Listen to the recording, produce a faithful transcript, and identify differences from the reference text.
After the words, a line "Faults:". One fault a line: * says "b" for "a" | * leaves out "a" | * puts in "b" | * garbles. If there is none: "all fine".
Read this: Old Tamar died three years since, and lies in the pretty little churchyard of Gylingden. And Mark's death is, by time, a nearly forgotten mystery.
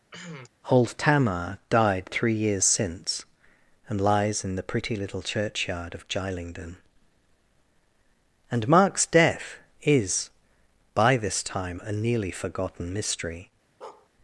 Old Tamar died three years since, and lies in the pretty little churchyard of Gylingden. And Mark's death is, by this time, a nearly forgotten mystery.
Faults:
* puts in "this"